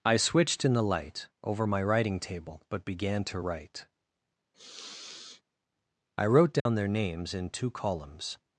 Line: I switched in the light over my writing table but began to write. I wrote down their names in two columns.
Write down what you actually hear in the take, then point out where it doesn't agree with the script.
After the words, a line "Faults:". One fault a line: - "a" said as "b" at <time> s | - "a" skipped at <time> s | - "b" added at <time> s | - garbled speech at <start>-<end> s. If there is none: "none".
I switched in the light over my writing table but began to write. I wrote down their names in two columns.
Faults:
none